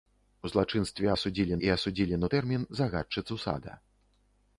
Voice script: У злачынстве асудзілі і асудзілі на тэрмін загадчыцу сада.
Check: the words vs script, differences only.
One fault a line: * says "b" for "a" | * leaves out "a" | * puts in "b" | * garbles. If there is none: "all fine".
all fine